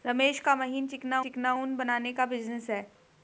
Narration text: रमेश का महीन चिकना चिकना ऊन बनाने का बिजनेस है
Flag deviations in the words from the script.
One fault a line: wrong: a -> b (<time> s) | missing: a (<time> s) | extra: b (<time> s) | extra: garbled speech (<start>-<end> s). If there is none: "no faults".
no faults